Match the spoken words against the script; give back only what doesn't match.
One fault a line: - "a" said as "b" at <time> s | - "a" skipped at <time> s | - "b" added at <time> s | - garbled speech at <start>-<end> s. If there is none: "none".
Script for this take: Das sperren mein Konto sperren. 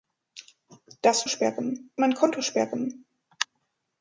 none